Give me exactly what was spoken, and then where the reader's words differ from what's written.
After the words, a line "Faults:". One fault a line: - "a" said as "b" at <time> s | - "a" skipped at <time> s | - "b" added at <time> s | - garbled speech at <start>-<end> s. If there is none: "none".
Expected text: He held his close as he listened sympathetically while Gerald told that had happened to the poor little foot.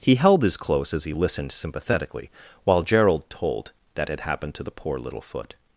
He held his close as he listened sympathetically while Gerald told that had happened to the poor little foot.
Faults:
none